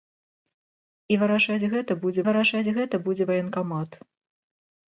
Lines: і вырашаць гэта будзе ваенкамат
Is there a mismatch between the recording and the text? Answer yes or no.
yes